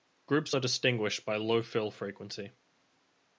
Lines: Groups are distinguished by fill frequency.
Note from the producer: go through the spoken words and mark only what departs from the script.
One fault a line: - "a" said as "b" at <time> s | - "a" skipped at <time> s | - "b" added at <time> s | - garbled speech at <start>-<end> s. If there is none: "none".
- "low" added at 1.4 s